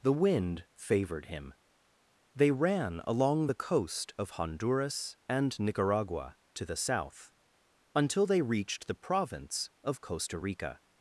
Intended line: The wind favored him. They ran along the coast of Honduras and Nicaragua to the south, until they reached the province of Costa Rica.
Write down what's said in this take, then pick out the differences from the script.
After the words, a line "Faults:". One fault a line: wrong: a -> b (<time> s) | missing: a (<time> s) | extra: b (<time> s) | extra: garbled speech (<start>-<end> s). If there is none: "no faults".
The wind favored him. They ran along the coast of Honduras and Nicaragua to the south, until they reached the province of Costa Rica.
Faults:
no faults